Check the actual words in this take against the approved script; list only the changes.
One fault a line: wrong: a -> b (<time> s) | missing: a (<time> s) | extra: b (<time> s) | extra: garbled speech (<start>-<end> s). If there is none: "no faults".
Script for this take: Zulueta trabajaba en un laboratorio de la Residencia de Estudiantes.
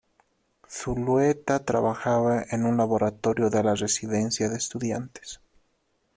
no faults